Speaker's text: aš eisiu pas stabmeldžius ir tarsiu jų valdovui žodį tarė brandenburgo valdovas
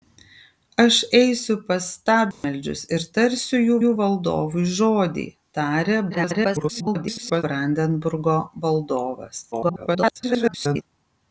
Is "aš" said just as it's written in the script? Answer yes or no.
yes